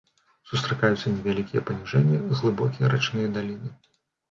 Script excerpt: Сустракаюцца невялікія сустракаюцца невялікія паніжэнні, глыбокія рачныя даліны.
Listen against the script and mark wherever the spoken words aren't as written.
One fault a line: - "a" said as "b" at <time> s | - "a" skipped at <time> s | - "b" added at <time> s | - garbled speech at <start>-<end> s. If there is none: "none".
- "сустракаюцца невялікія" skipped at 1.6 s